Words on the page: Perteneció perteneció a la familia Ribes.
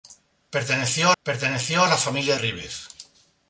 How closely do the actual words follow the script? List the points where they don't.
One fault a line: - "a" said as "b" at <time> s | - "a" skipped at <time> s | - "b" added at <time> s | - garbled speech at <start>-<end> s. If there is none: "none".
none